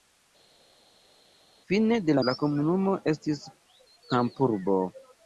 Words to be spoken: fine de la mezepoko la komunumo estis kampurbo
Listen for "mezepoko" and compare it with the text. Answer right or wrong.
wrong